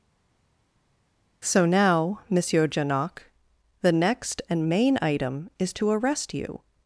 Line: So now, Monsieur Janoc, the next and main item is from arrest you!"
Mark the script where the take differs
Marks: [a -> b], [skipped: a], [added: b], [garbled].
So now, Monsieur Janoc, the next and main item is [from -> to] arrest you!"